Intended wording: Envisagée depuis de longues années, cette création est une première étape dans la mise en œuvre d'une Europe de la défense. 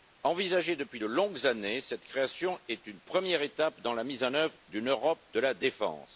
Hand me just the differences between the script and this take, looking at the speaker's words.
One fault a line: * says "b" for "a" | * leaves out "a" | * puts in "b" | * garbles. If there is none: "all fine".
all fine